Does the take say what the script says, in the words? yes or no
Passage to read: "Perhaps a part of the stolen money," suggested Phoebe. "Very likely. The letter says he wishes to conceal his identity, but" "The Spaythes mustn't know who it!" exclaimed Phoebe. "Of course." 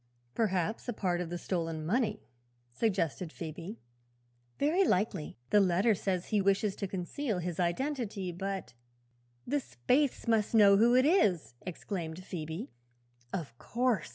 no